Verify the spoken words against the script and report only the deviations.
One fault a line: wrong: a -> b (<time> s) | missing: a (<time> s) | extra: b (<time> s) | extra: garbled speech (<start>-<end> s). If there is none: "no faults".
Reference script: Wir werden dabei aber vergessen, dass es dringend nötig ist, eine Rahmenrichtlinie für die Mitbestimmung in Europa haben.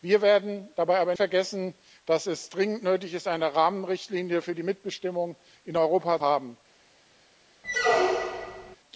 no faults